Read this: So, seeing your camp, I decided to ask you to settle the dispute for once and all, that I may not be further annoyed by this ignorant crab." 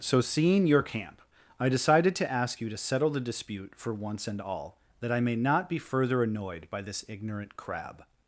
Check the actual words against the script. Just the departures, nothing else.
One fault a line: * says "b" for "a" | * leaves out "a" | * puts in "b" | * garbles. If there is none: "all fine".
all fine